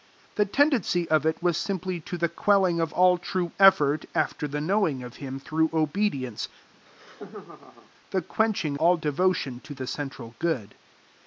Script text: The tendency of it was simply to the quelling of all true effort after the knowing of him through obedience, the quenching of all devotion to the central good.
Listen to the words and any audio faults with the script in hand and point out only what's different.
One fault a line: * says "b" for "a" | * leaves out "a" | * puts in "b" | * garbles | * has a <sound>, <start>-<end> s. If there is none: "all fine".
* has a laugh, 6.7-7.9 s
* leaves out "of"